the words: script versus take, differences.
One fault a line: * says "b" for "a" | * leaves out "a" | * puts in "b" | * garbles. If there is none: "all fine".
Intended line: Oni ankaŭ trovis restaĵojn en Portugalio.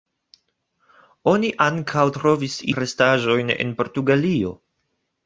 all fine